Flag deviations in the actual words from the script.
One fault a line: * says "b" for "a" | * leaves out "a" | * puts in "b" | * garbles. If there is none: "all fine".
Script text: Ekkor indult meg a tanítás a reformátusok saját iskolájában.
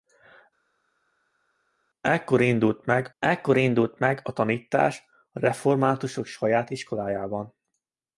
* puts in "ekkor indult meg"